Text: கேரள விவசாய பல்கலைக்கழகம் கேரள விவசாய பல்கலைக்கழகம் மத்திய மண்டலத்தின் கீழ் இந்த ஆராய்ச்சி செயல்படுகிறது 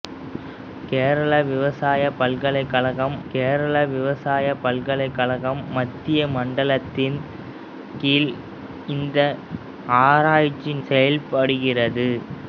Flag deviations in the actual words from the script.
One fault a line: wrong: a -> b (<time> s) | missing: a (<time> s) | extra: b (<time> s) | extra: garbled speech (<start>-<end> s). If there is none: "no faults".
no faults